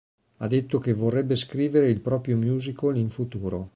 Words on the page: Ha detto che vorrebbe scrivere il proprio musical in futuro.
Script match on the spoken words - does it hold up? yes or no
yes